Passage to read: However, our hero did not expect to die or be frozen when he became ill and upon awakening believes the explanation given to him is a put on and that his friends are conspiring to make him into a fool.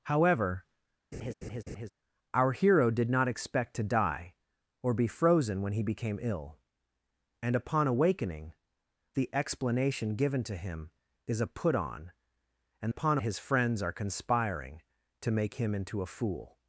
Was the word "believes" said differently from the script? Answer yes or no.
yes